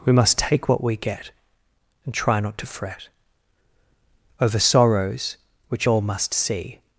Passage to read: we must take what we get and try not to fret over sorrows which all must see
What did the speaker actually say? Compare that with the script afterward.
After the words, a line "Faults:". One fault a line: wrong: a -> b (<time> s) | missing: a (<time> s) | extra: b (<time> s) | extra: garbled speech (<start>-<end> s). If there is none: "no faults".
we must take what we get and try not to fret over sorrows which all must see
Faults:
no faults